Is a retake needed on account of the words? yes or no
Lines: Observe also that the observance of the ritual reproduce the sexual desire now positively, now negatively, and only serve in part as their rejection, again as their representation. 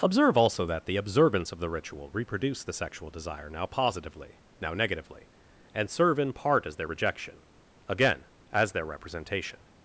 yes